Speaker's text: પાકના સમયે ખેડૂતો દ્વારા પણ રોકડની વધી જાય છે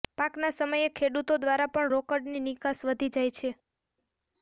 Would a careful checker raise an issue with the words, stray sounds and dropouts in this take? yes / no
yes